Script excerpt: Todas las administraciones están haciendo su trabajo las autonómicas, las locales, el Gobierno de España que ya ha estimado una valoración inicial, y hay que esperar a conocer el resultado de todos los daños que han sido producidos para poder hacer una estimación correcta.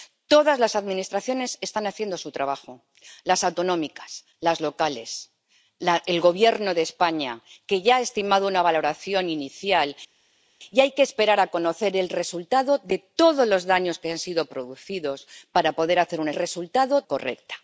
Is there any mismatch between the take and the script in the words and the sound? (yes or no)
yes